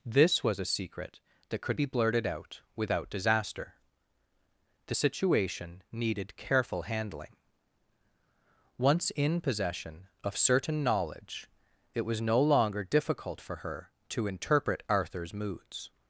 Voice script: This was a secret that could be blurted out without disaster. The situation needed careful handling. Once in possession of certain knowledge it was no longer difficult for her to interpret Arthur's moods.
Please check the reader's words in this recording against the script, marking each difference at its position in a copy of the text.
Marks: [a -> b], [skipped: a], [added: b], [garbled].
This was a secret that could be blurted out without disaster. The situation needed careful handling. Once in possession of certain knowledge it was no longer difficult for her to interpret Arthur's moods.